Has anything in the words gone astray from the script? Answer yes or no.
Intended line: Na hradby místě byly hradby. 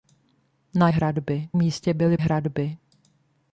no